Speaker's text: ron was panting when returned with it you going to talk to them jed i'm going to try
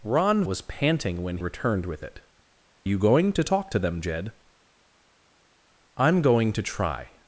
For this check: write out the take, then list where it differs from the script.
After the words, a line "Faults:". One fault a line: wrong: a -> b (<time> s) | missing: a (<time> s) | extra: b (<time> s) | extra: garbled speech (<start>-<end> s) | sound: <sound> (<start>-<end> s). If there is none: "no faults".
ron was panting when returned with it you going to talk to them jed i'm going to try
Faults:
no faults